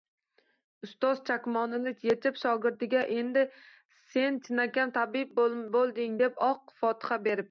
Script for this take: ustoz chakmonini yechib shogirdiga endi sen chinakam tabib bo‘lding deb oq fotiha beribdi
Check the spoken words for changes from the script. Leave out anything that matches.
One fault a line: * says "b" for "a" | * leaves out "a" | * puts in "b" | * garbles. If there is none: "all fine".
all fine